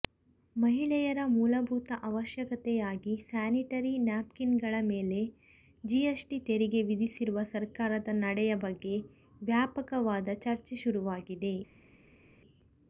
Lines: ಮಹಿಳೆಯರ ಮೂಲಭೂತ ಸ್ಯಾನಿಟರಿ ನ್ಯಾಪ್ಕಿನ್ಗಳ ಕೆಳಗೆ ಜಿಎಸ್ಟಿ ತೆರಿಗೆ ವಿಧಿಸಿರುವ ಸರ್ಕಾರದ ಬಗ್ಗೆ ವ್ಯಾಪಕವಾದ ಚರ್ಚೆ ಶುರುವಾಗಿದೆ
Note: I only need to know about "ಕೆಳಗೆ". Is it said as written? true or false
false